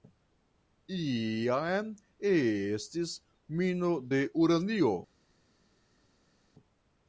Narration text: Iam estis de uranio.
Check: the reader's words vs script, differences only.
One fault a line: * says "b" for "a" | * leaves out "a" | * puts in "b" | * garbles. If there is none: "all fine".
* puts in "mino"